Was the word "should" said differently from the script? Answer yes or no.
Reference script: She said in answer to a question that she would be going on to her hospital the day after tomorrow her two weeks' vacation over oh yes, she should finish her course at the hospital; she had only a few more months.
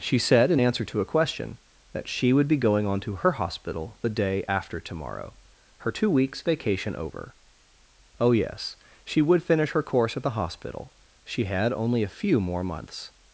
yes